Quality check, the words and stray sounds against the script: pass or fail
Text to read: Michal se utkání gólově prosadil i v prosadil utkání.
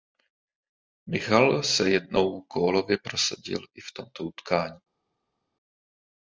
fail